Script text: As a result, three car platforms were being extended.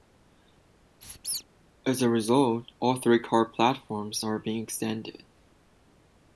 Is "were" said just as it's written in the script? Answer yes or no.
no